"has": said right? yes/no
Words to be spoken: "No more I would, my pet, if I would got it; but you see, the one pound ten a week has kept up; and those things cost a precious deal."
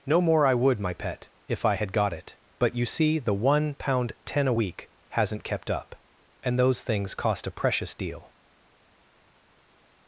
no